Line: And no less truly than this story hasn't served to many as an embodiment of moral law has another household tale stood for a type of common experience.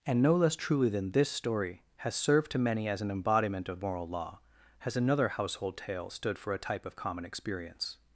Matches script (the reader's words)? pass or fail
fail